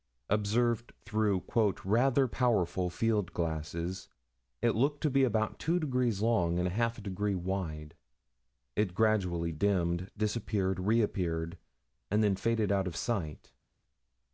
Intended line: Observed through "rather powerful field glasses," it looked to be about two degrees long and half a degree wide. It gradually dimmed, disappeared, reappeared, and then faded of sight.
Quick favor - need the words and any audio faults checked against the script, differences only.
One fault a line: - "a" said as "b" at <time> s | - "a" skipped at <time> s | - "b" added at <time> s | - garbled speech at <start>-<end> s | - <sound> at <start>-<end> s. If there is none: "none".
- "out" added at 12.7 s